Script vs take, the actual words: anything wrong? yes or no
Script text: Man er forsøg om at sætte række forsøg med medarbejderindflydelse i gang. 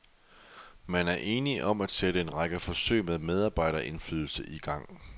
yes